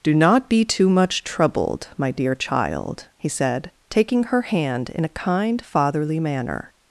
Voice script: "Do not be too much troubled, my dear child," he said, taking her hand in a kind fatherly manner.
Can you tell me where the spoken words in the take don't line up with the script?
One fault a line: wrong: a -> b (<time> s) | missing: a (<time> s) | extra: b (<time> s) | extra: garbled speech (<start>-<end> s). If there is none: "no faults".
no faults